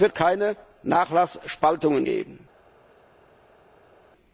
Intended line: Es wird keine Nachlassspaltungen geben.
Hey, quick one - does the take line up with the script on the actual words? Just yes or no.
yes